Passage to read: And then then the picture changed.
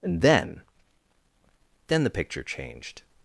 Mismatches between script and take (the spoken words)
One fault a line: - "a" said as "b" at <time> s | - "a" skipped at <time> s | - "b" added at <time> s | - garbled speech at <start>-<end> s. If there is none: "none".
none